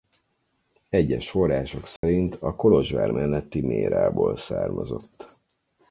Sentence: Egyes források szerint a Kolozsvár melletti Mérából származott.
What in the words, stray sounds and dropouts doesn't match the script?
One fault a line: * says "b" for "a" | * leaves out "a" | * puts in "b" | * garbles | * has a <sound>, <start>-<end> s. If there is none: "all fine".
* has a dropout, 2.0-2.0 s